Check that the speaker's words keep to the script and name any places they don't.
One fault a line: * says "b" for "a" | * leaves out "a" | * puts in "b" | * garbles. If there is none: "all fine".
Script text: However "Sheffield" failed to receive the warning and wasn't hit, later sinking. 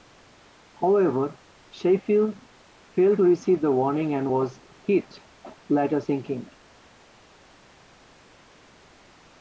* says "was" for "wasn't"